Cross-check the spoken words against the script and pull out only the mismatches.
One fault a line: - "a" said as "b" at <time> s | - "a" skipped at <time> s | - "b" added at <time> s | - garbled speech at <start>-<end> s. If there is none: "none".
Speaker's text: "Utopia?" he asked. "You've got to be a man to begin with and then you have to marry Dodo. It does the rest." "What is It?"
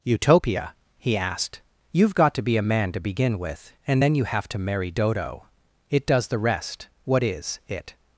none